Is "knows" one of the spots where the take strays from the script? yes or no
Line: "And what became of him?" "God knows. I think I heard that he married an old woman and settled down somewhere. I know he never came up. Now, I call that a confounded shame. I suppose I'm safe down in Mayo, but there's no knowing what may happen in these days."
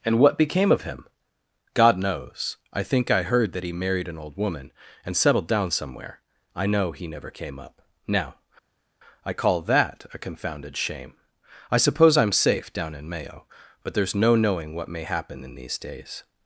no